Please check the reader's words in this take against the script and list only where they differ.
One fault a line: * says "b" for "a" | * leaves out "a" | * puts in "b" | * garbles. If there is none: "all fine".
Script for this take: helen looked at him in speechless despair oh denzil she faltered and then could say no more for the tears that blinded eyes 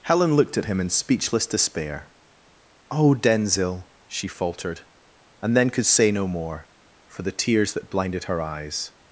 * puts in "her"